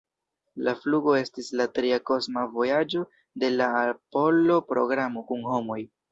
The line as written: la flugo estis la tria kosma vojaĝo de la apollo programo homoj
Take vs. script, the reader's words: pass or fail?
fail